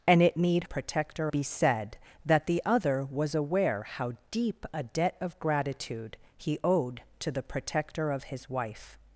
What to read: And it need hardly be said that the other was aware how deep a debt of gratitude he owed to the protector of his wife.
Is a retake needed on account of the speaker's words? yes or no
yes